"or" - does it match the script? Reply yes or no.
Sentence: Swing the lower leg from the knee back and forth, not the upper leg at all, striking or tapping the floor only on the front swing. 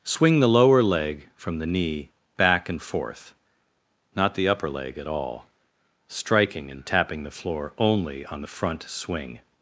no